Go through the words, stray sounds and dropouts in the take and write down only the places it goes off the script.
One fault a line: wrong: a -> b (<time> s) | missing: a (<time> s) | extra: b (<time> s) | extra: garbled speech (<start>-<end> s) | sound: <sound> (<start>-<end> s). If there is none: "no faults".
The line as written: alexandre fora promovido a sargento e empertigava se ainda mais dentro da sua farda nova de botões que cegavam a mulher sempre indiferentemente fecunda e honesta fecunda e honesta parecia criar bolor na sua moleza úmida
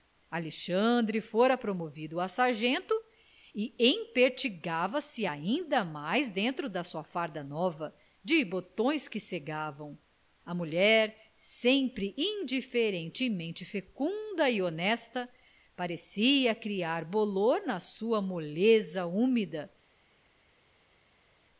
missing: fecunda e honesta (15.3 s)